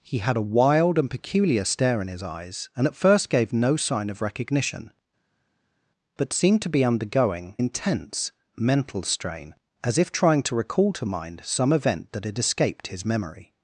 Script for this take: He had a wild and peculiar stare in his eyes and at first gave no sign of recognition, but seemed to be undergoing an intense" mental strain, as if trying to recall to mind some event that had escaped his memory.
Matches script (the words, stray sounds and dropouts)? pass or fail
fail